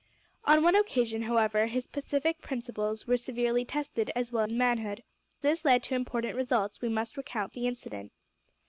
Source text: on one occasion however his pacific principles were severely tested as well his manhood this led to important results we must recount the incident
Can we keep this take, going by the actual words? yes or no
yes